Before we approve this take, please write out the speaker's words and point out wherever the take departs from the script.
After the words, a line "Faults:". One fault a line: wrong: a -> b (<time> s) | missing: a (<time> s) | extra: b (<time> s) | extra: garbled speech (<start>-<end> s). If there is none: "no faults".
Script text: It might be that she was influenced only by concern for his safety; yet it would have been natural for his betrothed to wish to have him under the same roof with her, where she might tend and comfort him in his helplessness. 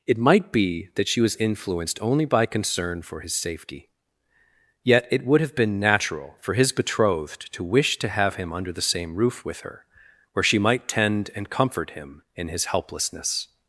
It might be that she was influenced only by concern for his safety; yet it would have been natural for his betrothed to wish to have him under the same roof with her, where she might tend and comfort him in his helplessness.
Faults:
no faults